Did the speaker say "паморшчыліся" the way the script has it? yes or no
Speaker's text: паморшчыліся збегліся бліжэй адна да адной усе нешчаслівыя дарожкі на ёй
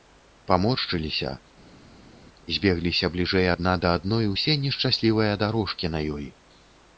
yes